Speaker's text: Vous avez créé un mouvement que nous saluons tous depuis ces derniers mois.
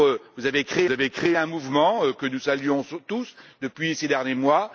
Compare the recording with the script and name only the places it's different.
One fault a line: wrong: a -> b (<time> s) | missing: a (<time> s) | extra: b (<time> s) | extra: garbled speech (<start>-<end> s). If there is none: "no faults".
extra: avez créé (0.9 s)